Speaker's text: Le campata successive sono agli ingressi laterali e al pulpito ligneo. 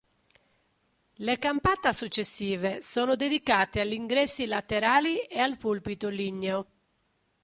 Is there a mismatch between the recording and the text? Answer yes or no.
yes